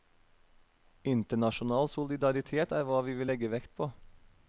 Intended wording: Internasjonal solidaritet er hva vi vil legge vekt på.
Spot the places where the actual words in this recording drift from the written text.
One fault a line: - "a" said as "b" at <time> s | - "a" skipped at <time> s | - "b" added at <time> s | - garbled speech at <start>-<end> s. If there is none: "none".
none